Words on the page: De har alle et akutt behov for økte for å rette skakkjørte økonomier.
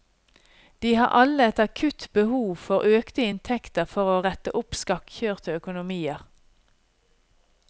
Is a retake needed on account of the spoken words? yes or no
yes